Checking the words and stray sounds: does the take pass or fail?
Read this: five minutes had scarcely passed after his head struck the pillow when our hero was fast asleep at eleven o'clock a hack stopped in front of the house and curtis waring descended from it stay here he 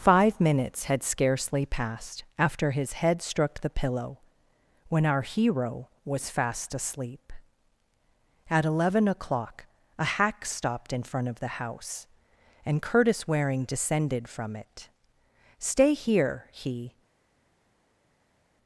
pass